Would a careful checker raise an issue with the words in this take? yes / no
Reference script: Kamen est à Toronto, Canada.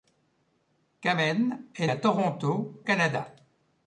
no